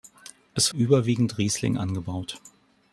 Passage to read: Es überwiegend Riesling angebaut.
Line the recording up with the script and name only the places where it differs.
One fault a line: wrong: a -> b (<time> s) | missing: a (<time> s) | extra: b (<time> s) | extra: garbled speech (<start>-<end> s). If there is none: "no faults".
no faults